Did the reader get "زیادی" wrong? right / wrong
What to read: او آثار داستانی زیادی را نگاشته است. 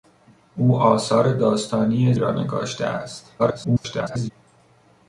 wrong